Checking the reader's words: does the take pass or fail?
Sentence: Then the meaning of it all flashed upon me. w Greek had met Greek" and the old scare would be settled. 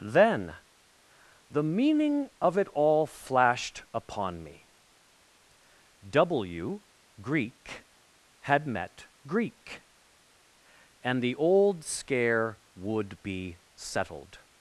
pass